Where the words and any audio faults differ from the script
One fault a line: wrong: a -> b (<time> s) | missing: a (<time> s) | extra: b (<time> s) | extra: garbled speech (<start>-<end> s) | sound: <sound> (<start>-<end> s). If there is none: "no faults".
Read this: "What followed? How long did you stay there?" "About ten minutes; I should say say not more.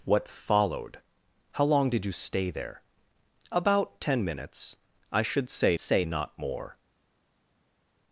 no faults